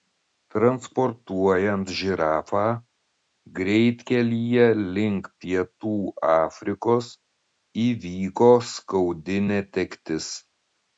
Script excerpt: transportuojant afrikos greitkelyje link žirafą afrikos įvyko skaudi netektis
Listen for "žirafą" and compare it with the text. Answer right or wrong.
wrong